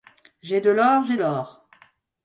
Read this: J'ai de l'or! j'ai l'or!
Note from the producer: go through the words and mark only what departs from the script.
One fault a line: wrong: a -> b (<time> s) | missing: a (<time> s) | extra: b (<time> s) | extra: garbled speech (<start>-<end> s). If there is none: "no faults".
no faults